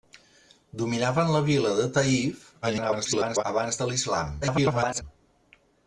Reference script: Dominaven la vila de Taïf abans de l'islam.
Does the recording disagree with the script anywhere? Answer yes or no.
yes